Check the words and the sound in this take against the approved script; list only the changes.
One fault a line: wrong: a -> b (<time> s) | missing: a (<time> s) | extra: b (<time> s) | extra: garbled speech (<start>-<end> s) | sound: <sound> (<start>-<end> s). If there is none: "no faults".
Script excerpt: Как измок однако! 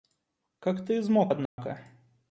extra: ты (0.8 s)
sound: dropout (1.5-1.6 s)